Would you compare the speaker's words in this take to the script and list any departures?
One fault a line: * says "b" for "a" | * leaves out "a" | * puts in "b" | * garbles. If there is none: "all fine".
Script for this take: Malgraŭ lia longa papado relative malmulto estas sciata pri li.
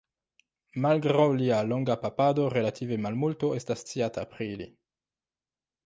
all fine